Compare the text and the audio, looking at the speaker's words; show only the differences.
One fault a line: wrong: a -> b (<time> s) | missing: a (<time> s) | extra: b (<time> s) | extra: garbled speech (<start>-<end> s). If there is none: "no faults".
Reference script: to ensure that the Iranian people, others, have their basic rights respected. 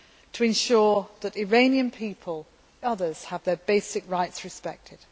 no faults